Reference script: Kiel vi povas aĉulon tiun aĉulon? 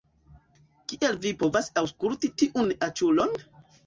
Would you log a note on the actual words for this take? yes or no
yes